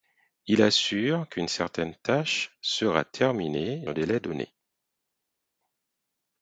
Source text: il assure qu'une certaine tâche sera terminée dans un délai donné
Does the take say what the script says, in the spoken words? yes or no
no